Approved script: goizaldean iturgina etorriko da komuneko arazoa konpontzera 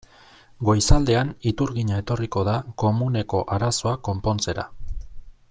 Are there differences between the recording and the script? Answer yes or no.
no